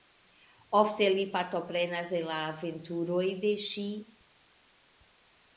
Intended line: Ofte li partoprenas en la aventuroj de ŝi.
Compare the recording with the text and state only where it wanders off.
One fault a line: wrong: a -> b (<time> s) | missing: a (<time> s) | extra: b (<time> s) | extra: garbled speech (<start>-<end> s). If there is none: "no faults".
no faults